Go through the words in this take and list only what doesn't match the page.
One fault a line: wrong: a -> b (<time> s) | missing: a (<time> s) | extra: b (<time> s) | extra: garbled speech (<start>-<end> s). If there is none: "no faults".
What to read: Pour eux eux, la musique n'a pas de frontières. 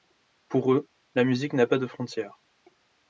missing: eux (0.9 s)